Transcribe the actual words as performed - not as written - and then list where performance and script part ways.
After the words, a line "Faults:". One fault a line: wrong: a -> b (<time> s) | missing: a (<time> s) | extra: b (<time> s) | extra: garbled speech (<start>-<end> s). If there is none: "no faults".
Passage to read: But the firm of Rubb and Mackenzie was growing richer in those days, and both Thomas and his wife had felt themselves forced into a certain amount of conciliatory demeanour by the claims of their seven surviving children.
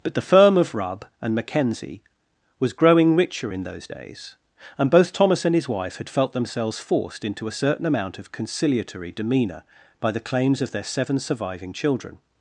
But the firm of Rubb and Mackenzie was growing richer in those days, and both Thomas and his wife had felt themselves forced into a certain amount of conciliatory demeanour by the claims of their seven surviving children.
Faults:
no faults